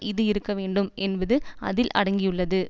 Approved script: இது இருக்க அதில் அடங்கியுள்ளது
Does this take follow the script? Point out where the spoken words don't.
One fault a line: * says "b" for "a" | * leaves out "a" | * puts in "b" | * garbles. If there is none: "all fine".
* puts in "வேண்டும் என்பது"